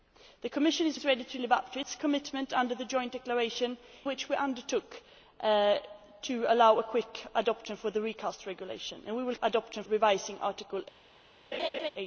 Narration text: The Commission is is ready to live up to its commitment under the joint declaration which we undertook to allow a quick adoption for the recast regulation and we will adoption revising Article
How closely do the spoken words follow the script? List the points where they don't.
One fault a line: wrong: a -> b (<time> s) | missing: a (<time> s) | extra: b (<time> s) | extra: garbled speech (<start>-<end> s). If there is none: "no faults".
no faults